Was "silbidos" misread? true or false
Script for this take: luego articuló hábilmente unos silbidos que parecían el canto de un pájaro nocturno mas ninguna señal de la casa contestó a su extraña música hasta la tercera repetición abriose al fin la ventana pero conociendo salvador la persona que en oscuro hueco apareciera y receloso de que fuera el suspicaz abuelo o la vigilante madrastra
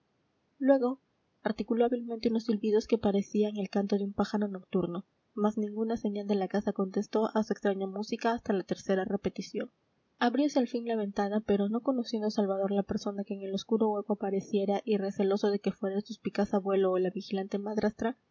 false